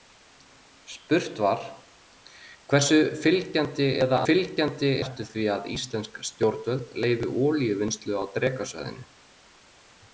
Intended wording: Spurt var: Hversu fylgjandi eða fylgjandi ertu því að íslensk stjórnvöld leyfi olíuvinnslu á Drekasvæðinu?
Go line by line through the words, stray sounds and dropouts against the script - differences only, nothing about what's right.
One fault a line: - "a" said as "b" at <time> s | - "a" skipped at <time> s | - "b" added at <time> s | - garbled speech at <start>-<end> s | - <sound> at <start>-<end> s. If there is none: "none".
none